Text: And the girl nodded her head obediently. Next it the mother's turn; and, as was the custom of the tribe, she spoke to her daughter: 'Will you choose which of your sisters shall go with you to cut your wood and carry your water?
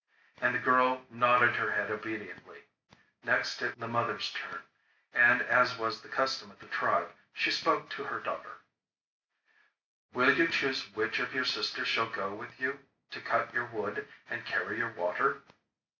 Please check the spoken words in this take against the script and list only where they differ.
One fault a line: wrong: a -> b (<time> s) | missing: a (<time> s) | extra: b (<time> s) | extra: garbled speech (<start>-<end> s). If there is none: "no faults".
no faults